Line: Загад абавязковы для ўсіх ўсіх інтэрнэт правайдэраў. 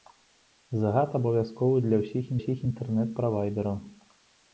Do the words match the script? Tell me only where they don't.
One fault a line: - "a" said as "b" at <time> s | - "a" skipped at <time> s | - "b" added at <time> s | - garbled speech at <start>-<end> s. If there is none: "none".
none